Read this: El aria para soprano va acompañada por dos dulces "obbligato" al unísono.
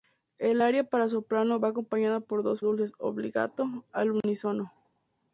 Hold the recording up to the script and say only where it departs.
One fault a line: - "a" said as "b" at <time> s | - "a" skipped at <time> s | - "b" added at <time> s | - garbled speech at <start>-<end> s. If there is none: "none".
none